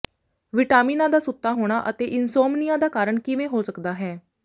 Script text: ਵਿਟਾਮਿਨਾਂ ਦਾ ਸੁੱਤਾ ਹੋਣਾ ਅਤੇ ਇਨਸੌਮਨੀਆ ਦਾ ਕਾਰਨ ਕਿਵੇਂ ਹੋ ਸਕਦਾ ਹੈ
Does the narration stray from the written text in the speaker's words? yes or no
no